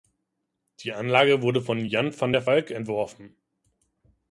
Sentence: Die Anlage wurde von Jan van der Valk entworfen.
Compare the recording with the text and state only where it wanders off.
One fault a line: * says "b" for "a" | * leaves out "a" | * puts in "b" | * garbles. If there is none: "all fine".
all fine